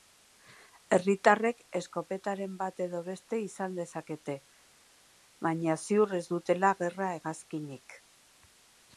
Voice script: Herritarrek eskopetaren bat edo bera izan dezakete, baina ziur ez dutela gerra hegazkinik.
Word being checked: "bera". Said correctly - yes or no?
no